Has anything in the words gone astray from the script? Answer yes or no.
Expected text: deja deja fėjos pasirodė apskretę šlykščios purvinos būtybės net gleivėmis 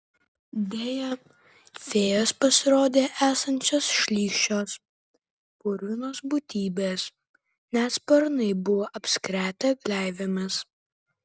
yes